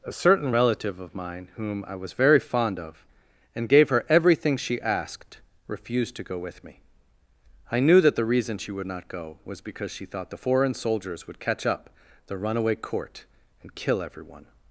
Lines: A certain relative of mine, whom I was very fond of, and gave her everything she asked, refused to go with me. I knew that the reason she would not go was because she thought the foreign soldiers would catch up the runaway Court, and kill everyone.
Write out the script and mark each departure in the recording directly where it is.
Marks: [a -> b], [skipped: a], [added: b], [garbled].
A certain relative of mine, whom I was very fond of, and gave her everything she asked, refused to go with me. I knew that the reason she would not go was because she thought the foreign soldiers would catch up the runaway Court, and kill everyone.